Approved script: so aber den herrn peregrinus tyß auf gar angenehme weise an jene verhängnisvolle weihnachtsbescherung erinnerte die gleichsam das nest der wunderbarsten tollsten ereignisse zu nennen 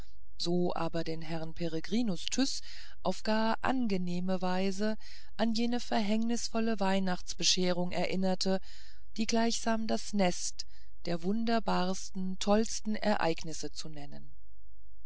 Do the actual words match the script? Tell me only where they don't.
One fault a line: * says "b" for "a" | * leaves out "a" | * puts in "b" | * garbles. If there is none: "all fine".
all fine